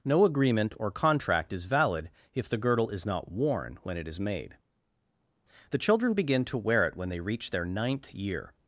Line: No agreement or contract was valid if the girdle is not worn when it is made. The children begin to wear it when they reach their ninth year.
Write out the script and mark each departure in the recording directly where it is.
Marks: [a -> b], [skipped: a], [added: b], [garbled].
No agreement or contract [was -> is] valid if the girdle is not worn when it is made. The children begin to wear it when they reach their ninth year.